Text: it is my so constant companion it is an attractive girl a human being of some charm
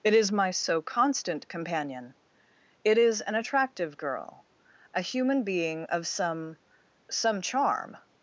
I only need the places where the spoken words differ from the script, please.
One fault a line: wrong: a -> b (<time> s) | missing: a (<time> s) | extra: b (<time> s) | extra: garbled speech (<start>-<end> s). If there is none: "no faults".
extra: some (7.1 s)